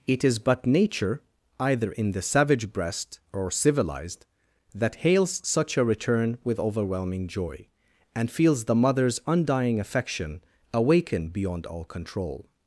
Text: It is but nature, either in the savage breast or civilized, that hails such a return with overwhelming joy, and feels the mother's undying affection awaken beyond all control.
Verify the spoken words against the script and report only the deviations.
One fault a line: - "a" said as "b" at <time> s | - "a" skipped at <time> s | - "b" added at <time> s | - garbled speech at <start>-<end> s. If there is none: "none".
none